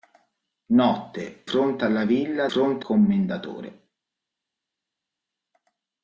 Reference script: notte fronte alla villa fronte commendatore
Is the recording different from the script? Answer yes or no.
no